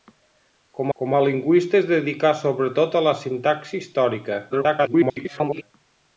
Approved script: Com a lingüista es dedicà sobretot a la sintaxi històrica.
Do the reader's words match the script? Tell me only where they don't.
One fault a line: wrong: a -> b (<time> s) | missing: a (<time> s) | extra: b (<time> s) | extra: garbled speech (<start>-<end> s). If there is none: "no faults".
extra: com (1.0 s)
extra: garbled speech (4.5-5.6 s)